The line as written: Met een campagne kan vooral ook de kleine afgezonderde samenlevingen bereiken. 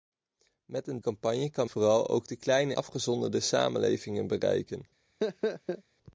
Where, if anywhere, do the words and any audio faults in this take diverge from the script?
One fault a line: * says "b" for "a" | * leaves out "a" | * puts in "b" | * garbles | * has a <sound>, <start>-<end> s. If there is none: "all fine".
* has a laugh, 5.2-5.8 s